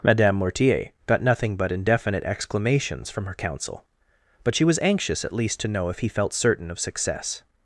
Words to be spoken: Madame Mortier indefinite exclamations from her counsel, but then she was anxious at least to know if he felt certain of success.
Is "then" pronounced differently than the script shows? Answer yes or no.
yes